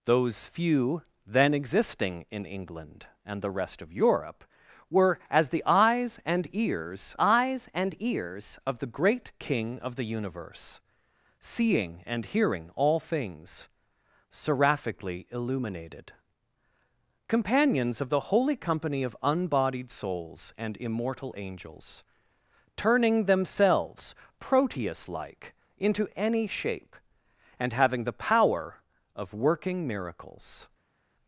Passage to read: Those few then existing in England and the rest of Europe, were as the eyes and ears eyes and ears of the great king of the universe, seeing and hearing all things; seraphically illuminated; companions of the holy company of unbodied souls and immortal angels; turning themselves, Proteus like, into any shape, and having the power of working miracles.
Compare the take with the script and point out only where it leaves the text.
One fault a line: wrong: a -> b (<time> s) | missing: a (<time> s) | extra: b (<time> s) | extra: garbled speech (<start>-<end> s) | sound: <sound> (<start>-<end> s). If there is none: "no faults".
no faults